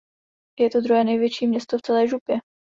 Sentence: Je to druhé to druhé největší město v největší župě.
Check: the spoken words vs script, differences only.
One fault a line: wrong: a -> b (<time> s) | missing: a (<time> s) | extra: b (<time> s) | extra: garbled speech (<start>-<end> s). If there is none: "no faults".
missing: to druhé (1.0 s)
wrong: největší -> celé (1.8 s)